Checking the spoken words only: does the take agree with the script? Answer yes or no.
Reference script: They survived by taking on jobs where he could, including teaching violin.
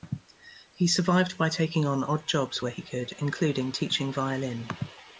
no